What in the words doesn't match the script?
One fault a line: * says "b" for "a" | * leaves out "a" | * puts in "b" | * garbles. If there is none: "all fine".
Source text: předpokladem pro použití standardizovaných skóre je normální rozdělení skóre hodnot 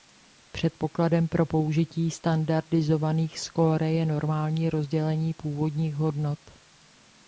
* says "původních" for "skóre"